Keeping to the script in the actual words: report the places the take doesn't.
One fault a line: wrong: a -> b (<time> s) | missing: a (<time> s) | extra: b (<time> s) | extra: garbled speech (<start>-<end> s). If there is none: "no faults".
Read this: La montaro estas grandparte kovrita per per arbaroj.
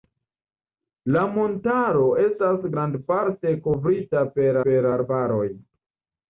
no faults